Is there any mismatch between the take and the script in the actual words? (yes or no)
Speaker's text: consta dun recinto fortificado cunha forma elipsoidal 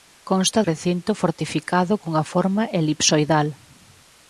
yes